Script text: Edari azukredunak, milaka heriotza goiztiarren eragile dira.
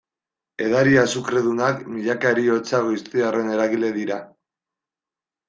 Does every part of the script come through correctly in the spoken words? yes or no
yes